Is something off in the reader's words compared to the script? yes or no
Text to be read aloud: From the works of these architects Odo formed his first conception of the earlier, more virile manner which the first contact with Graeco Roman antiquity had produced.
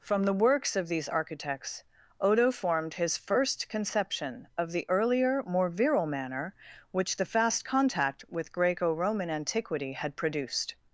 yes